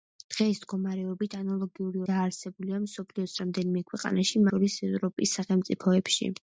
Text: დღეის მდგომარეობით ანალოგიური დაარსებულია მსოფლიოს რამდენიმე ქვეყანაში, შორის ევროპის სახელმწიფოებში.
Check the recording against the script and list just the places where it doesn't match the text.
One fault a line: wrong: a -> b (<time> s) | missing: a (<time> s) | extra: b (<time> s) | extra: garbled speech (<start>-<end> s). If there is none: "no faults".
no faults